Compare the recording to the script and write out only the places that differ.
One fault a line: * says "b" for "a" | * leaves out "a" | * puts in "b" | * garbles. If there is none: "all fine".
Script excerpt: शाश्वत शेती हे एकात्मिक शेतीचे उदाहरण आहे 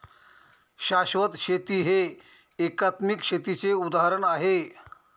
all fine